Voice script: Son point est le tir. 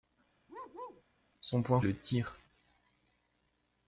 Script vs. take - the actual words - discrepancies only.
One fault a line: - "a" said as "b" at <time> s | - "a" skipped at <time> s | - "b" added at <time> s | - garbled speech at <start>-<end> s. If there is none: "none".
none